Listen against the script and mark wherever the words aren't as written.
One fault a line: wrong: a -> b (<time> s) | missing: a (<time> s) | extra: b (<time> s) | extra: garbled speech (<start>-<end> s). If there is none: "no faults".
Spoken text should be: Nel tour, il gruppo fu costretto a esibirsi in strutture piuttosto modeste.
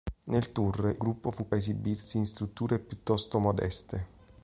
missing: il (1.0 s)
missing: costretto (1.5 s)